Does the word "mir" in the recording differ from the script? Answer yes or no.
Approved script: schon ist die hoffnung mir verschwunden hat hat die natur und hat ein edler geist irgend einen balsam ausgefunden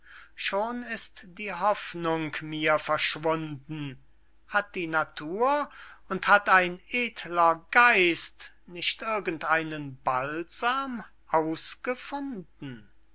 no